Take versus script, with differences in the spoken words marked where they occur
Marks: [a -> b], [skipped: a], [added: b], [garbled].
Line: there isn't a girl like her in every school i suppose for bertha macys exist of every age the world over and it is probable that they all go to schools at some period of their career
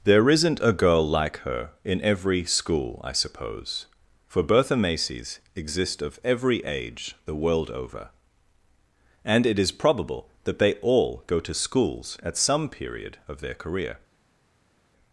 there isn't a girl like her in every school i suppose for bertha macys exist of every age the world over and it is probable that they all go to schools at some period of their career